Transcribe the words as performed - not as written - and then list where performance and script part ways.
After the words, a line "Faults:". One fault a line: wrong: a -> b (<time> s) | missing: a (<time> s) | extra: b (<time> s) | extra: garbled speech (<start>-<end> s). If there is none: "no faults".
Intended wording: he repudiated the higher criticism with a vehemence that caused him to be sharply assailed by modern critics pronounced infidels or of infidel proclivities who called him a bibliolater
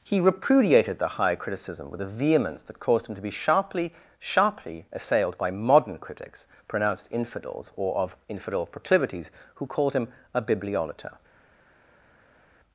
he repudiated the higher criticism with a vehemence that caused him to be sharply sharply assailed by modern critics pronounced infidels or of infidel proclivities who called him a bibliolater
Faults:
extra: sharply (4.2 s)